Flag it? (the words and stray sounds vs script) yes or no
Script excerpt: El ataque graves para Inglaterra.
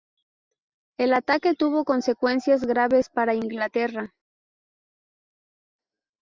yes